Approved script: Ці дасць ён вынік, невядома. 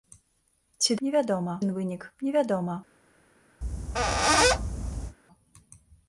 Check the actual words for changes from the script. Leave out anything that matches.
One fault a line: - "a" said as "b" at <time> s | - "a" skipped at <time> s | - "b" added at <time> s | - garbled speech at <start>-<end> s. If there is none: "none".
- "дасць" said as "невядома" at 1.1 s